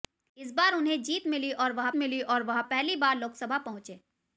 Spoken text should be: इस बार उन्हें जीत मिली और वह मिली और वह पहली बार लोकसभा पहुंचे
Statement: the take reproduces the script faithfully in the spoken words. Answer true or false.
true